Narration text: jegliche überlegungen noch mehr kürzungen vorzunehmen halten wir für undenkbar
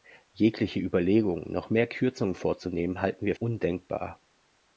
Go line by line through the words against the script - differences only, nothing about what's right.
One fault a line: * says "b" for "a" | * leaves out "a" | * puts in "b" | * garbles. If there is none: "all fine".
* leaves out "für"